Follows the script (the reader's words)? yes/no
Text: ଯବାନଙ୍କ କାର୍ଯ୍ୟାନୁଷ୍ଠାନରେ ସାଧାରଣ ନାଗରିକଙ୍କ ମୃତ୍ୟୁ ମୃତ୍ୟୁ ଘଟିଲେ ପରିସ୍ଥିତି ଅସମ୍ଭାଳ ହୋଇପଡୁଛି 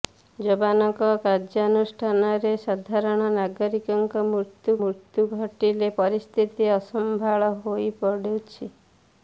yes